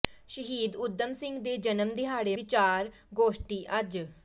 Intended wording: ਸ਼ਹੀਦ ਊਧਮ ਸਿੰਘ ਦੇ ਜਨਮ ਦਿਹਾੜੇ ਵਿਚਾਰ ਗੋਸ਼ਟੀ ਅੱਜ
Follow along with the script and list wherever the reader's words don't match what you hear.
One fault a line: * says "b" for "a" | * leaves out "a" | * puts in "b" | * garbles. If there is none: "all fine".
all fine